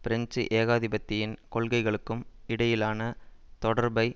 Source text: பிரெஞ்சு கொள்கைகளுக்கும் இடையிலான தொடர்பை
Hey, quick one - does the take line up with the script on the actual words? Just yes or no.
no